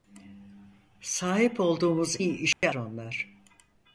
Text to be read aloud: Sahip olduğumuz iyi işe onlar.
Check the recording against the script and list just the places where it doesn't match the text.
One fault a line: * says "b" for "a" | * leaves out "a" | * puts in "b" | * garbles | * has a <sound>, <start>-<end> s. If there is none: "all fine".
* has a dropout, 2.5-2.6 s